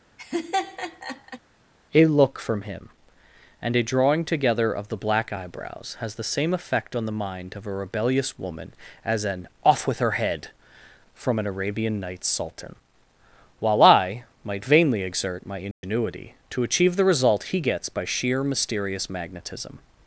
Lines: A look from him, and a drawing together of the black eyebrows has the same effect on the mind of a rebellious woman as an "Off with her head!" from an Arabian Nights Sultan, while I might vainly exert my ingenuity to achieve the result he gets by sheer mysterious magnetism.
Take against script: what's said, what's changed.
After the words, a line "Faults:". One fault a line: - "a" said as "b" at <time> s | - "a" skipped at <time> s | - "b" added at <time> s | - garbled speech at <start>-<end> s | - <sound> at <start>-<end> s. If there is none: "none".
A look from him, and a drawing together of the black eyebrows has the same effect on the mind of a rebellious woman as an "Off with her head!" from an Arabian Nights Sultan, while I might vainly exert my ingenuity to achieve the result he gets by sheer mysterious magnetism.
Faults:
- laugh at 0.2-1.4 s
- dropout at 15.7-15.8 s